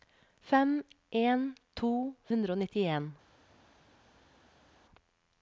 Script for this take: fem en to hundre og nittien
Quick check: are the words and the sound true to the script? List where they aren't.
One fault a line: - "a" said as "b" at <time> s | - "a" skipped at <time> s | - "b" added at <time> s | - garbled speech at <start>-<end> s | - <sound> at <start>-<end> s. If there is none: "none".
none